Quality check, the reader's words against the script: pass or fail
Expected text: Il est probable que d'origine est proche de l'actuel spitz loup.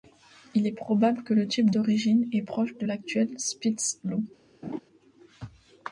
fail